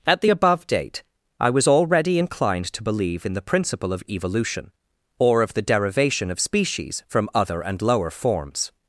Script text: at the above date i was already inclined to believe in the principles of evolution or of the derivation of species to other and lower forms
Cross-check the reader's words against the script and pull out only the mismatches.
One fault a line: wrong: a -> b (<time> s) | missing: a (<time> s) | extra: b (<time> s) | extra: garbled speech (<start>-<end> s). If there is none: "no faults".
wrong: principles -> principle (3.4 s)
wrong: to -> from (7.1 s)